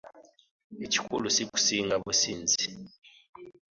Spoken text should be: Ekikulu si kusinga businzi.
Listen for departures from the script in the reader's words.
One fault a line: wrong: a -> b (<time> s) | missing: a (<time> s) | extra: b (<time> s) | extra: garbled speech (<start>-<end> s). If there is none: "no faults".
no faults